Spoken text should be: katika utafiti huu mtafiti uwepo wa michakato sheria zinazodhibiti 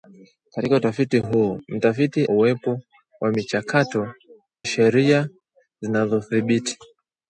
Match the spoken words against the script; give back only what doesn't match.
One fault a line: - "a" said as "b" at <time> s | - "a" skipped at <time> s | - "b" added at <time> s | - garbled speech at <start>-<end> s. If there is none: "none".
none